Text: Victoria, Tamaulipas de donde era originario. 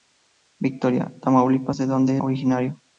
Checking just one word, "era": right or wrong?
wrong